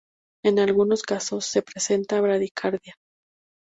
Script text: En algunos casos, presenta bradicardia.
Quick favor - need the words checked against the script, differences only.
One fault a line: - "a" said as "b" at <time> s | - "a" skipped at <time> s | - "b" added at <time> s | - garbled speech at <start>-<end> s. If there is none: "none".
- "se" added at 1.4 s